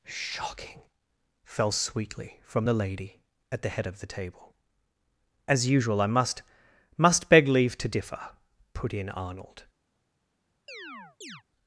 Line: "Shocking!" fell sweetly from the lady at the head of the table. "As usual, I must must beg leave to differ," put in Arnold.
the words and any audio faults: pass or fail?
fail